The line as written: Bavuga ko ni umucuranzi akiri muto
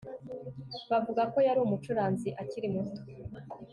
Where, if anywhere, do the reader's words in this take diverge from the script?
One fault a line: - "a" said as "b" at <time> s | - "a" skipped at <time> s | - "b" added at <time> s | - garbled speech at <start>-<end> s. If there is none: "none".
- "ni" said as "yari" at 1.5 s